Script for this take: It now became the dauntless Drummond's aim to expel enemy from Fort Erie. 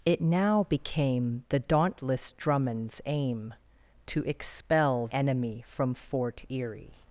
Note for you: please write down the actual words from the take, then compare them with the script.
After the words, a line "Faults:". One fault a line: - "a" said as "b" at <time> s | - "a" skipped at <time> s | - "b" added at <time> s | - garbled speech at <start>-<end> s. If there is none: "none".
It now became the dauntless Drummond's aim to expel enemy from Fort Erie.
Faults:
none